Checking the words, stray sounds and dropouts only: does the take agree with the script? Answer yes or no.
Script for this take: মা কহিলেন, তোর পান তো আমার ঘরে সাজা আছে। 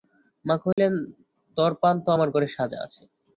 no